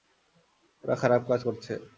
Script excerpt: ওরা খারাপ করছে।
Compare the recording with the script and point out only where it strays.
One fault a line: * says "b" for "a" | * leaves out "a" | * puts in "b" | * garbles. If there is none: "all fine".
* puts in "কাজ"